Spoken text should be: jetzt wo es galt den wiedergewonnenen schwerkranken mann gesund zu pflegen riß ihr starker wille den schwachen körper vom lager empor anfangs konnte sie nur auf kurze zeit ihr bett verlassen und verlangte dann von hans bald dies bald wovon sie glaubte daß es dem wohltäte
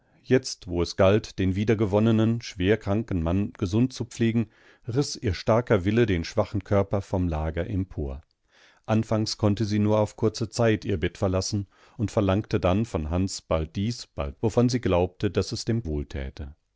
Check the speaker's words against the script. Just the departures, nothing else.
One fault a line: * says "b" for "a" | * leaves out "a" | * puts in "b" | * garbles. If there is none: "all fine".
all fine